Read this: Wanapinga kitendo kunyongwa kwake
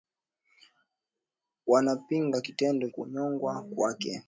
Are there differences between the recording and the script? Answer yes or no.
no